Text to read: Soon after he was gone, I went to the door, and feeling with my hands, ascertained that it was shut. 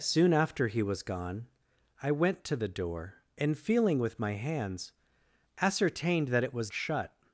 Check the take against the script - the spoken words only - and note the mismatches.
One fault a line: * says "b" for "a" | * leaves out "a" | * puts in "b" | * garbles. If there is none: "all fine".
all fine